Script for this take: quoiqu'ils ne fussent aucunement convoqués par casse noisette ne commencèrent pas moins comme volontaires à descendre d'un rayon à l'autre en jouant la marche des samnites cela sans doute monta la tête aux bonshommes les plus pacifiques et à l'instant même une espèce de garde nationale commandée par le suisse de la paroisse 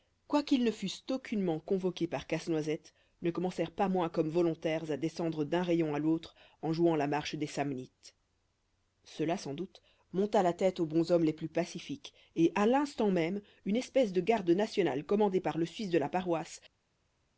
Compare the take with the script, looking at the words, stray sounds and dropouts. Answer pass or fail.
pass